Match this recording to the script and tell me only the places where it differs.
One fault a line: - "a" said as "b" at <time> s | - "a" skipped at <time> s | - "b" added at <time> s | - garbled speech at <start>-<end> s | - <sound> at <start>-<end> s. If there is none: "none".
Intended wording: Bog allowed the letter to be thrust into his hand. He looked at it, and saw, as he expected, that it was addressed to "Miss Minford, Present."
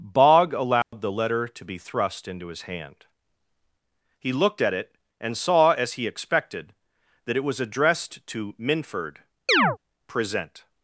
- dropout at 0.8-0.9 s
- "Miss" skipped at 8.6 s
- chirp at 9.5-9.8 s